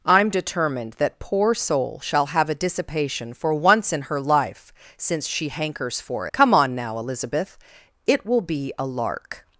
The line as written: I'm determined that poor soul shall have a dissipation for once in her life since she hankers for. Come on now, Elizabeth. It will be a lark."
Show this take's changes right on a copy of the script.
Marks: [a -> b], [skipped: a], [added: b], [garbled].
I'm determined that poor soul shall have a dissipation for once in her life since she hankers for. Come on now, Elizabeth. It will be a lark."